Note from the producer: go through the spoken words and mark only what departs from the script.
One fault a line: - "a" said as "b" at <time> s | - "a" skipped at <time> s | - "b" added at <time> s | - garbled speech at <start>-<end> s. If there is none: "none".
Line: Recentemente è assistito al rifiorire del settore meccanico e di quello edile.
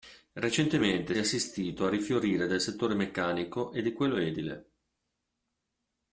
none